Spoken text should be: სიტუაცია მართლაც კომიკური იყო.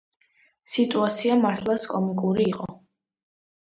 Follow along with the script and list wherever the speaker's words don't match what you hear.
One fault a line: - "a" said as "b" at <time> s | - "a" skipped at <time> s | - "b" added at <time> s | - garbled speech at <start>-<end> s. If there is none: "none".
none